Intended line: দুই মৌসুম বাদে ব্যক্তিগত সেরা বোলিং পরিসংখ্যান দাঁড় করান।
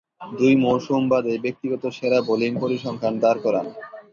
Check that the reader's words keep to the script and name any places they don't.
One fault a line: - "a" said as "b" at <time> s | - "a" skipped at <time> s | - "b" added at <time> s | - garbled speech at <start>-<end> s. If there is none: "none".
none